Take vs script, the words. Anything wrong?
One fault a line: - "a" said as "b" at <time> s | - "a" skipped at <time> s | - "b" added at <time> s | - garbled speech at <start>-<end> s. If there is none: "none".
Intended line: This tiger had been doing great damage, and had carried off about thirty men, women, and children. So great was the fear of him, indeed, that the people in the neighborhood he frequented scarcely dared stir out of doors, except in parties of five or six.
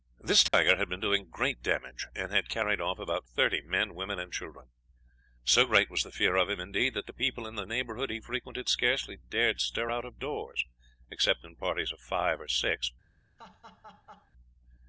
none